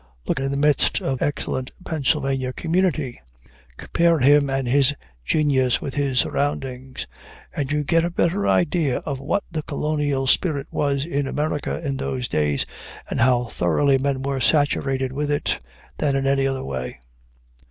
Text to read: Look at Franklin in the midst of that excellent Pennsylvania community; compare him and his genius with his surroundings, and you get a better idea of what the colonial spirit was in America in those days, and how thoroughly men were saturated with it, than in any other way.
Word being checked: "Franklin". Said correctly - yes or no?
no